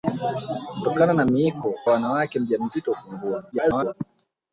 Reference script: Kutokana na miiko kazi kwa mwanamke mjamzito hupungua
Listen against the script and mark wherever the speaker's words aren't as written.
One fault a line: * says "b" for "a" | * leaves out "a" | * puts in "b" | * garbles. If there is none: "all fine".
* leaves out "kazi kwa"
* garbles